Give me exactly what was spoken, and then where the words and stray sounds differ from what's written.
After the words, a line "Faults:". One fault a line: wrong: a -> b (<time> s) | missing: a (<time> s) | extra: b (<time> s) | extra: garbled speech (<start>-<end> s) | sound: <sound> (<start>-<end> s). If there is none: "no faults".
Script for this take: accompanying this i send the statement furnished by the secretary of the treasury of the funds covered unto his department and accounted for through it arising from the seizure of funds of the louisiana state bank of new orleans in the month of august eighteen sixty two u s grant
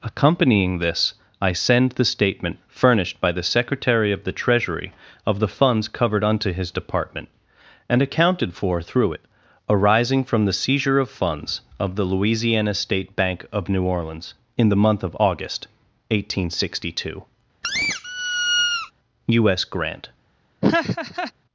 accompanying this i send the statement furnished by the secretary of the treasury of the funds covered unto his department and accounted for through it arising from the seizure of funds of the louisiana state bank of new orleans in the month of august eighteen sixty two u s grant
Faults:
sound: squeak (17.6-18.9 s)
sound: laugh (20.6-21.3 s)